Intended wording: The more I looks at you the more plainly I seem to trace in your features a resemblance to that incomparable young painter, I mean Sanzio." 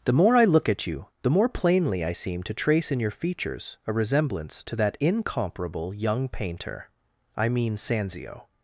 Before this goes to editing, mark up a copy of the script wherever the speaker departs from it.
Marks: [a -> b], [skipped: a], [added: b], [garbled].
The more I [looks -> look] at you the more plainly I seem to trace in your features a resemblance to that incomparable young painter, I mean Sanzio."